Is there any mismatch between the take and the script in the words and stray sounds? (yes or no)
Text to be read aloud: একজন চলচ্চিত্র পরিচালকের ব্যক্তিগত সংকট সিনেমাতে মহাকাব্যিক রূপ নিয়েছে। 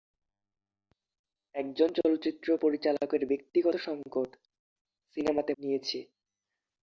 yes